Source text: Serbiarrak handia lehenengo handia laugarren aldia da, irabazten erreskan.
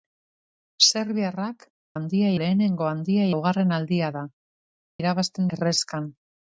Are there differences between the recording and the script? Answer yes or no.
no